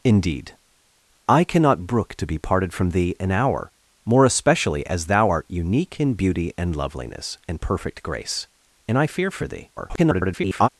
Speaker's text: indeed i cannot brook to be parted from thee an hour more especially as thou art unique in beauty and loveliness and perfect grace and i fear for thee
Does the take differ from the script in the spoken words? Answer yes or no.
yes